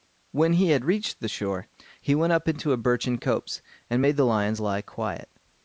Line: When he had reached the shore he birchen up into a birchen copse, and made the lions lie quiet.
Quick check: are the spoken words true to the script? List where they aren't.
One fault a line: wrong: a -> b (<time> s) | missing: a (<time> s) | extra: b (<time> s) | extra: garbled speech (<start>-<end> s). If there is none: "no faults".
wrong: birchen -> went (2.1 s)